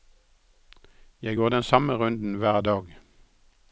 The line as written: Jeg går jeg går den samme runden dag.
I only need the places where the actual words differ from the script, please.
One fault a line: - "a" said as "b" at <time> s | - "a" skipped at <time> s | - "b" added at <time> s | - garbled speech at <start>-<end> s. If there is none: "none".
- "jeg går" skipped at 1.5 s
- "hver" added at 2.3 s